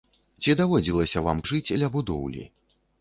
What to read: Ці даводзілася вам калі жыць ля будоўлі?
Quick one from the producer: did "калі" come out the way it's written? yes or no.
no